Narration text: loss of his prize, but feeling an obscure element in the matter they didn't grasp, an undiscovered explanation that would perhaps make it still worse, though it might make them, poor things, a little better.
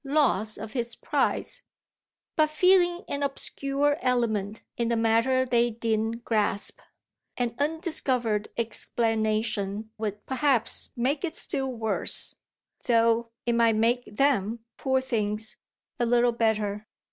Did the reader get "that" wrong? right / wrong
wrong